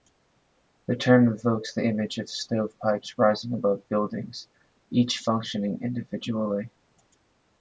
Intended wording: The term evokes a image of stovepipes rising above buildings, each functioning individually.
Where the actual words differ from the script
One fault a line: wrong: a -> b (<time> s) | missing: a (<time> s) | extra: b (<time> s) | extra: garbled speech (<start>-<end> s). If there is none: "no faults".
wrong: a -> the (1.8 s)